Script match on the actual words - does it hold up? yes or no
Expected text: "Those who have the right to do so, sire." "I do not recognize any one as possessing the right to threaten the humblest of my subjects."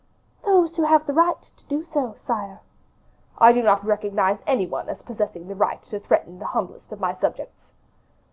yes